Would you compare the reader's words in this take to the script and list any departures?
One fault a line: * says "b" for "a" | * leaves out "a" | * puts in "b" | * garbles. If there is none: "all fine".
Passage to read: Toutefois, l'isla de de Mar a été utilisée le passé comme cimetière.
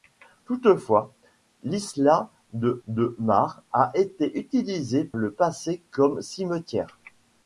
all fine